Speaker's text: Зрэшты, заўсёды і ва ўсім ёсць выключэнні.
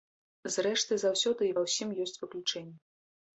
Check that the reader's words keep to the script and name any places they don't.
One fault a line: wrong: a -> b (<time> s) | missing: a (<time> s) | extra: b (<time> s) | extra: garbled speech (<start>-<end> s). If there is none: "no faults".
no faults